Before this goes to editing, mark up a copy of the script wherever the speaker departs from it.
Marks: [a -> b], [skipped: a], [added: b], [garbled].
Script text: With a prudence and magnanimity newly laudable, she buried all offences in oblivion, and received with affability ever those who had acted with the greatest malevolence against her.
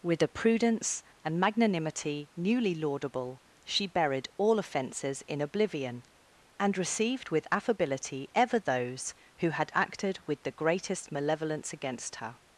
With a prudence and magnanimity newly laudable, she buried all offences in oblivion, and received with affability ever those who had acted with the greatest malevolence against her.